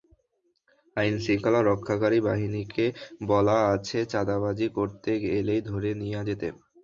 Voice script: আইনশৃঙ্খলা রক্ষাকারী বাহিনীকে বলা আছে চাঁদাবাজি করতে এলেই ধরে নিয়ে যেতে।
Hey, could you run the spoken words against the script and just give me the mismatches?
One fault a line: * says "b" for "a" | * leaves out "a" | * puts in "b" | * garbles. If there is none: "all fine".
all fine